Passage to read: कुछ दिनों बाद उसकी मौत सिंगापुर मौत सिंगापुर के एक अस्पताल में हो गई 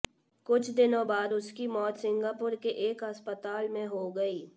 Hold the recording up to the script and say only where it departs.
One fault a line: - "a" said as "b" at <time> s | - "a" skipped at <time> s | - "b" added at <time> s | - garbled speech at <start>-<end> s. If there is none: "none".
- "मौत सिंगापुर" skipped at 2.5 s